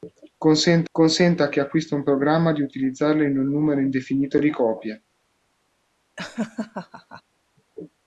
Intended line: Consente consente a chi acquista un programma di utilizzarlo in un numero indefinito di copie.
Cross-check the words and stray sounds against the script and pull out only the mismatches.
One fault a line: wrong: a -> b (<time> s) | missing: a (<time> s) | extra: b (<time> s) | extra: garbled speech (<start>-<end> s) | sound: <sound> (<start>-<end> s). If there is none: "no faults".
sound: laugh (6.2-7.2 s)